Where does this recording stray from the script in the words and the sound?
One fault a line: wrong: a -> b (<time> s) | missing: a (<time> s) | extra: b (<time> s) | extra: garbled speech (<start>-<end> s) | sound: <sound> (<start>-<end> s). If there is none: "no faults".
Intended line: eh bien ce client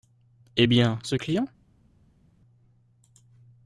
no faults